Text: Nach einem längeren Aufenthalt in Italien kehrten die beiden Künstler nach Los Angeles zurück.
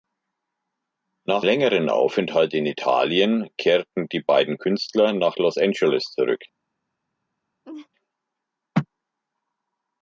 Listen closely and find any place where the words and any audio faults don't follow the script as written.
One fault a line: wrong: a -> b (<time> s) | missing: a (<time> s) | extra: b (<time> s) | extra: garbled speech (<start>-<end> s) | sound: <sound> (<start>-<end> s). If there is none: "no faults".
missing: einem (1.4 s)
sound: laugh (7.6-7.9 s)